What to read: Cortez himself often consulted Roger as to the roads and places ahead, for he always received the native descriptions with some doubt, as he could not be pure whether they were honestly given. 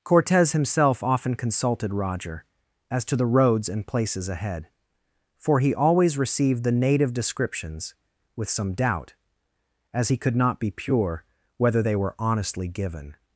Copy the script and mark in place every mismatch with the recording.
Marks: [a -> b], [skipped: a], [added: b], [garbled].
Cortez himself often consulted Roger as to the roads and places ahead, for he always received the native descriptions with some doubt, as he could not be pure whether they were honestly given.